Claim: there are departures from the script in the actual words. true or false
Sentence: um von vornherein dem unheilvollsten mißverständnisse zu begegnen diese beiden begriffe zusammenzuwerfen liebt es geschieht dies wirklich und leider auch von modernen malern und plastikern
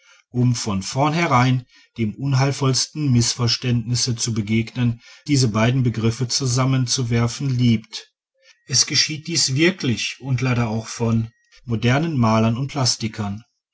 false